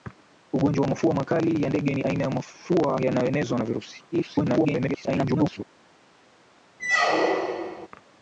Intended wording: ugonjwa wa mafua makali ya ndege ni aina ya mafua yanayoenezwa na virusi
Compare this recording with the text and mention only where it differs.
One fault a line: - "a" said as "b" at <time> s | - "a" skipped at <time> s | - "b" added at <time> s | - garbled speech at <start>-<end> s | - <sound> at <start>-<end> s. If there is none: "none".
- garbled speech at 4.1-5.6 s
- squeak at 6.8-7.9 s